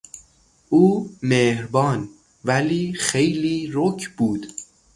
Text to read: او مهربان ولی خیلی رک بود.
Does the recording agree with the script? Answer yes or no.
yes